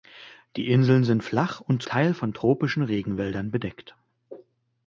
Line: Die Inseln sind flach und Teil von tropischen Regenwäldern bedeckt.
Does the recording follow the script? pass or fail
pass